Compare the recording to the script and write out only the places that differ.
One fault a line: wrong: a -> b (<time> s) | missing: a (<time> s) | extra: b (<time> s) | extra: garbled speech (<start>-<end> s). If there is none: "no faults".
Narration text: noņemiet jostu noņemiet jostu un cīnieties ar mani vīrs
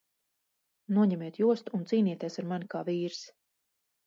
missing: noņemiet jostu (1.8 s)
extra: kā (2.7 s)